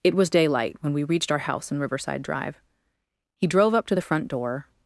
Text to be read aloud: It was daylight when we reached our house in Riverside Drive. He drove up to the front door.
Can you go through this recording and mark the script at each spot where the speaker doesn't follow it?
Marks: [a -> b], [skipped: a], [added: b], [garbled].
It was daylight when we reached our house in Riverside Drive. He drove up to the front door.